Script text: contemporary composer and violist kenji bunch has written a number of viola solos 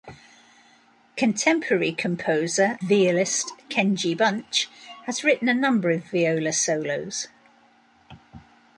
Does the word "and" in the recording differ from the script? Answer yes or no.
yes